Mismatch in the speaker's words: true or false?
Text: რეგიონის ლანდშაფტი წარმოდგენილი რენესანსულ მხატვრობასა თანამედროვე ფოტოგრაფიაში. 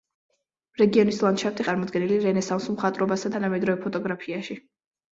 false